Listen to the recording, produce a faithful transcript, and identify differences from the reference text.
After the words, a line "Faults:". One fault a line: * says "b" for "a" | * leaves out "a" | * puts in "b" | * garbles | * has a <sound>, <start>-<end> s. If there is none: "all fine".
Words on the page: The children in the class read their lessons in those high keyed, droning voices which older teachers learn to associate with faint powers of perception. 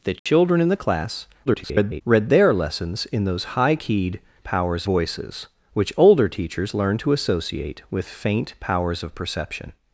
The children in the class [garbled] read their lessons in those high keyed, powers voices which older teachers learn to associate with faint powers of perception.
Faults:
* has a dropout, 0.2-0.3 s
* garbles
* says "powers" for "droning"